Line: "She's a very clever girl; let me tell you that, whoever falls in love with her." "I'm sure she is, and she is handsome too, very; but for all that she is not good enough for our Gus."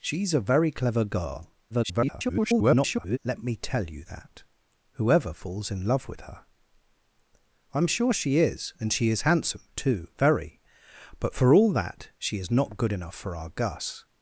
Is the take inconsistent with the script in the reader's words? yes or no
yes